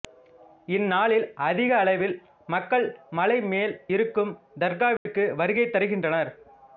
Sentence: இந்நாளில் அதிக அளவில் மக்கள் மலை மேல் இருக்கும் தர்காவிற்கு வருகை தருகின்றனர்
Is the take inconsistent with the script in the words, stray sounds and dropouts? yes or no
yes